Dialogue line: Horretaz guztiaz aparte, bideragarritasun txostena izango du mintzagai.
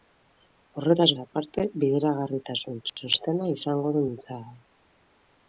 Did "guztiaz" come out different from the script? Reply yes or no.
yes